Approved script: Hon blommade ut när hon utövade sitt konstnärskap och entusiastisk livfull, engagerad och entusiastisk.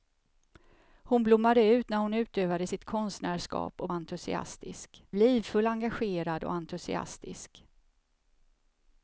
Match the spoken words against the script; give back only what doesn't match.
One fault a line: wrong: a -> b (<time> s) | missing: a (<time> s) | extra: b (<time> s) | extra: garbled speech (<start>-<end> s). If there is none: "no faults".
no faults